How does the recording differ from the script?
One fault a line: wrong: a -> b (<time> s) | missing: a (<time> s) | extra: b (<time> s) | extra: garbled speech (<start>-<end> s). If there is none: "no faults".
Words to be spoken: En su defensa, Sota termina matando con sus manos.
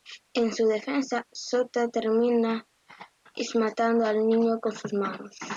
extra: al niño (4.0 s)